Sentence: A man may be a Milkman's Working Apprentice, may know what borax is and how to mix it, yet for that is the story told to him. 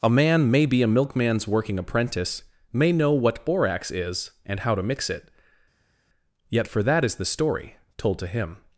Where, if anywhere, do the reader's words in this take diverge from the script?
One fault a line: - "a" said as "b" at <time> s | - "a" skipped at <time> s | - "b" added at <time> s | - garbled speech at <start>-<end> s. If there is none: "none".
none